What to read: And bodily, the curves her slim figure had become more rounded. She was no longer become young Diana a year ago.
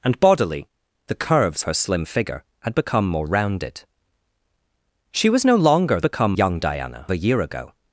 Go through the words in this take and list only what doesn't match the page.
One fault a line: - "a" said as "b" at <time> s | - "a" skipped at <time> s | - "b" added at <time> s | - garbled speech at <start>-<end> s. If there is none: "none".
none